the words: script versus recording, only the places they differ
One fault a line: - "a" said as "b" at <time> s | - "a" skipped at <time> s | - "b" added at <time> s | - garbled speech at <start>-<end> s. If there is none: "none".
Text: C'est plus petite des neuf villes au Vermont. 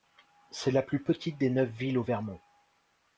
- "la" added at 0.7 s